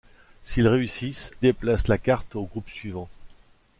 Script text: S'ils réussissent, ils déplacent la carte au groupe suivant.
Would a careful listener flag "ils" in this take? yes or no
yes